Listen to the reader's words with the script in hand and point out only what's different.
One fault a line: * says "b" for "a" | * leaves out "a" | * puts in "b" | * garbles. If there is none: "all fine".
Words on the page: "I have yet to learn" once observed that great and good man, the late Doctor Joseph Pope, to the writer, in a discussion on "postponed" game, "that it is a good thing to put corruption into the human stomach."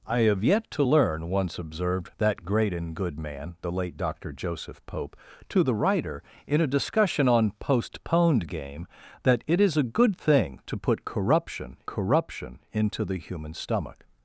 * puts in "corruption"